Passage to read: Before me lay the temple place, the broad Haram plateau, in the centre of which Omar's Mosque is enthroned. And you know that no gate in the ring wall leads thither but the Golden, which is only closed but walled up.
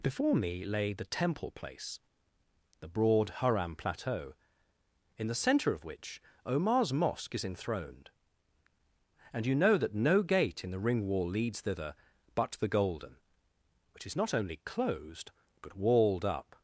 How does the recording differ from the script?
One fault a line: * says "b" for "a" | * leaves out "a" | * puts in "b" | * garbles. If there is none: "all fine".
* puts in "not"